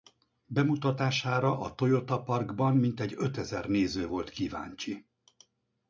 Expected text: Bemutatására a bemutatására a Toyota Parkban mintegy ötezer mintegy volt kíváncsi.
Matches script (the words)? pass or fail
fail